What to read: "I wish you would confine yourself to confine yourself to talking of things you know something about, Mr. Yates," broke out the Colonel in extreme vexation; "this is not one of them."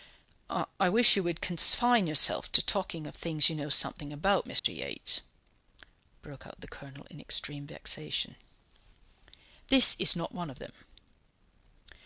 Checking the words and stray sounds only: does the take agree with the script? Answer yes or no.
no